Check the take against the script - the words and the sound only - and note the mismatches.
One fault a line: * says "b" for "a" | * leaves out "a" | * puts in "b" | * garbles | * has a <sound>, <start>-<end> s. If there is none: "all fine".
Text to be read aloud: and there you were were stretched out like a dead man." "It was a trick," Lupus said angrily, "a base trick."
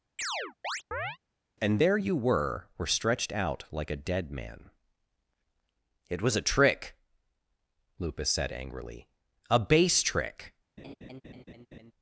* has a chirp, 0.2-1.2 s
* has a laugh, 10.8-11.9 s